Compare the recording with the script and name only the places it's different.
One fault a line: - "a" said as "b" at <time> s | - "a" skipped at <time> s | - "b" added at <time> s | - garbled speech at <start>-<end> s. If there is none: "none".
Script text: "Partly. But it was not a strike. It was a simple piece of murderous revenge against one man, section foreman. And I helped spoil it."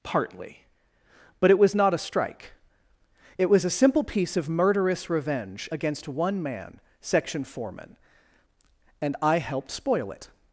none